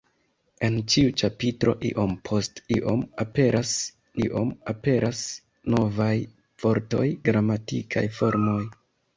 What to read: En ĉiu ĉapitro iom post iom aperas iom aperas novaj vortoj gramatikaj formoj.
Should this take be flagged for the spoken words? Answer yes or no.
no